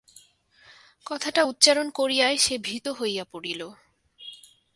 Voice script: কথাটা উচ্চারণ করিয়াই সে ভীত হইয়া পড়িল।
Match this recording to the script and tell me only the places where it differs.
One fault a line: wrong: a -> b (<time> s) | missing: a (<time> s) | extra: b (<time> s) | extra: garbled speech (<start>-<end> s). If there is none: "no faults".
no faults